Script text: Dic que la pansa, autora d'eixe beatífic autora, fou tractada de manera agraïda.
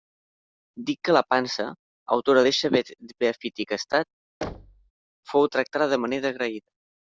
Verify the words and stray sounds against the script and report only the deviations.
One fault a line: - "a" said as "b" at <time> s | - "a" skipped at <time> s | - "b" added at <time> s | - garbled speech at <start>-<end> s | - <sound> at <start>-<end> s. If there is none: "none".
- "autora" said as "estat" at 3.8 s
- thud at 4.4-4.9 s